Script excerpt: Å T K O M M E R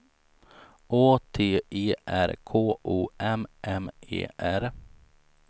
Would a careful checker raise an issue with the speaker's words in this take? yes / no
yes